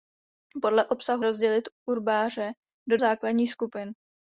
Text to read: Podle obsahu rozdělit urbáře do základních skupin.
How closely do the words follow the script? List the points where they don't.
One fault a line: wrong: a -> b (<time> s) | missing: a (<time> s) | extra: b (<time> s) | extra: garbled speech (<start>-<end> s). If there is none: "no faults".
no faults